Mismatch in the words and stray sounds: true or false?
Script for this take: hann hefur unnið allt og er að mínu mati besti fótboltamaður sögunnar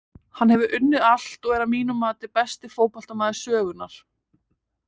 false